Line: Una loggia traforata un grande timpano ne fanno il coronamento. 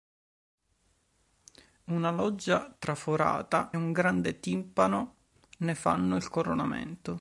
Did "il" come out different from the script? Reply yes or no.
no